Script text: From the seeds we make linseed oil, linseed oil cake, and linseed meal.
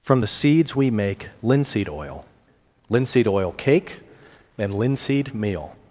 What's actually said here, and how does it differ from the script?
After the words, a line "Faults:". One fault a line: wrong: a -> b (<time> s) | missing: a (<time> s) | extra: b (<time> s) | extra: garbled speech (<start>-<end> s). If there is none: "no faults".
From the seeds we make linseed oil, linseed oil cake, and linseed meal.
Faults:
no faults